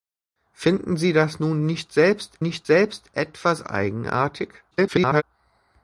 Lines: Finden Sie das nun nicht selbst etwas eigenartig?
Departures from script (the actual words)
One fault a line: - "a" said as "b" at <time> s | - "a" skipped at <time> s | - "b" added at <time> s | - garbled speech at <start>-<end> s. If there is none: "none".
- "nicht selbst" added at 2.4 s
- garbled speech at 4.7-5.2 s